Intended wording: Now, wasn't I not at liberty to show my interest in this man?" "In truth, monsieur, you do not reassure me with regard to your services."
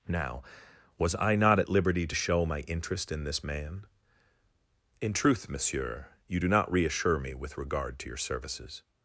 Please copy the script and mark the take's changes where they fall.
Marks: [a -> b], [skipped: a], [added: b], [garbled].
Now, [wasn't -> was] I not at liberty to show my interest in this man?" "In truth, monsieur, you do not reassure me with regard to your services."